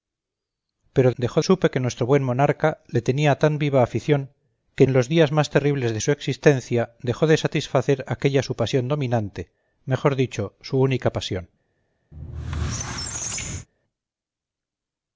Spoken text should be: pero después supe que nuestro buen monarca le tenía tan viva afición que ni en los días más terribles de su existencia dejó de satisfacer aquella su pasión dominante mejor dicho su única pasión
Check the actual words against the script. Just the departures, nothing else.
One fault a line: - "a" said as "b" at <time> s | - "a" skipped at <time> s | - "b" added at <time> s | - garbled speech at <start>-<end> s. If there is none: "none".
- "después" said as "dejó" at 1.2 s
- "ni" skipped at 4.9 s